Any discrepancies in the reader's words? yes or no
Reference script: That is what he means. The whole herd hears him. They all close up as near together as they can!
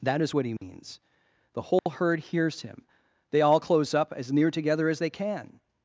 no